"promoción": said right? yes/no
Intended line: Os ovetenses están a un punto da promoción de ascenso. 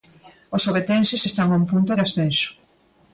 no